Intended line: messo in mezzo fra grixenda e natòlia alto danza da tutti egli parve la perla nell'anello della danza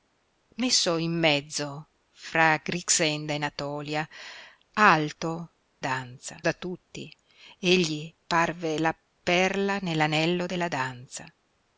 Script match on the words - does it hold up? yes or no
yes